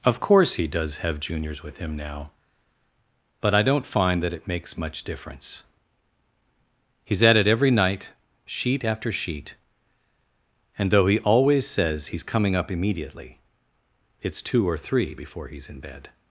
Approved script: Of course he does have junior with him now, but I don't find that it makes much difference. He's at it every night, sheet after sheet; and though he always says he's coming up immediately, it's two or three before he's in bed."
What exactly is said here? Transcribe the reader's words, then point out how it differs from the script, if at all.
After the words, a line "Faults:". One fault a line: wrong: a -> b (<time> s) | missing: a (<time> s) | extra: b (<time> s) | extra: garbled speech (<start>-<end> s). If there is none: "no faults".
Of course he does have juniors with him now, but I don't find that it makes much difference. He's at it every night, sheet after sheet; and though he always says he's coming up immediately, it's two or three before he's in bed."
Faults:
wrong: junior -> juniors (1.2 s)